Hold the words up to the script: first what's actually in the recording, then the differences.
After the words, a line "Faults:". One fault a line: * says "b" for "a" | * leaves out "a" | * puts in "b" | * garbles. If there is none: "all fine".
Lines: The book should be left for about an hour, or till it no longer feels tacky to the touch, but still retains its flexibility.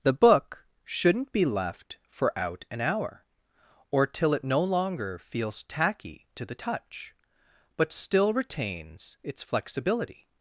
The book shouldn't be left for out an hour, or till it no longer feels tacky to the touch, but still retains its flexibility.
Faults:
* says "shouldn't" for "should"
* says "out" for "about"